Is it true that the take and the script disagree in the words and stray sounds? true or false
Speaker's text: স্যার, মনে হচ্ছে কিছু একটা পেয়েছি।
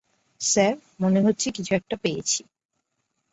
false